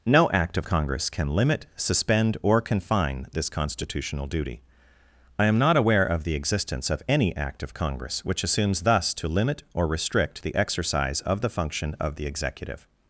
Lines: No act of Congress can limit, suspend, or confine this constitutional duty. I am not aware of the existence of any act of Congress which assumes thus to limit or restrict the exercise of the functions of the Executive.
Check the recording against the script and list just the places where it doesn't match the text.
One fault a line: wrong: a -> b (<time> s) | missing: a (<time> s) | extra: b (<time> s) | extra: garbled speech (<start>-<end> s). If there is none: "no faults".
wrong: functions -> function (11.5 s)